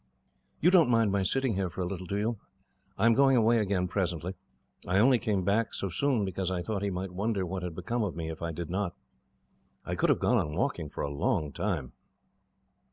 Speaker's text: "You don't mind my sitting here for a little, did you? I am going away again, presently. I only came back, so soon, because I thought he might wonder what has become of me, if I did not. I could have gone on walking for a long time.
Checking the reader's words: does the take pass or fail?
fail